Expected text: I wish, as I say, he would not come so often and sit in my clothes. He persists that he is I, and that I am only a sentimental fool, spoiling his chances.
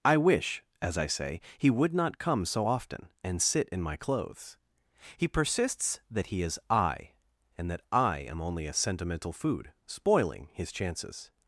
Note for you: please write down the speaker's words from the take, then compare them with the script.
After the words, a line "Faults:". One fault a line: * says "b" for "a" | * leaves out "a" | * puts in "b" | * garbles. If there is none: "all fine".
I wish, as I say, he would not come so often and sit in my clothes. He persists that he is I, and that I am only a sentimental food, spoiling his chances.
Faults:
* says "food" for "fool"